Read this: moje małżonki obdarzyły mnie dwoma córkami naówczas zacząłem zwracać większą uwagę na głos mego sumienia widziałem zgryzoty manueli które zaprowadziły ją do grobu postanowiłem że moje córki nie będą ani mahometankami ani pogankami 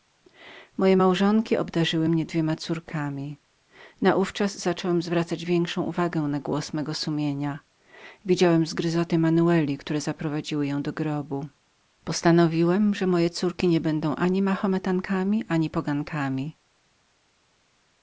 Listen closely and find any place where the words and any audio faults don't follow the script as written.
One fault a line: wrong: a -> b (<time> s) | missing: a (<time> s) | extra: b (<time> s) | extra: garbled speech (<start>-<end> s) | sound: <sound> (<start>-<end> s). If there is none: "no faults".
no faults